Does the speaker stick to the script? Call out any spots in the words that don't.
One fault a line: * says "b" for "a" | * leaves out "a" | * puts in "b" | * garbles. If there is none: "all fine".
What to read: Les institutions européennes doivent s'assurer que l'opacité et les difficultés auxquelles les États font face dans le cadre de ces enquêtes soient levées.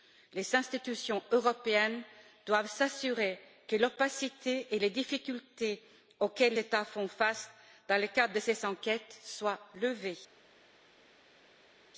* leaves out "les"